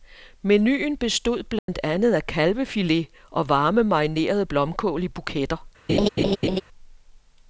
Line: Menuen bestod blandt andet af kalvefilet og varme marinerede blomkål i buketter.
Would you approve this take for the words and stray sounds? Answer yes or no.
no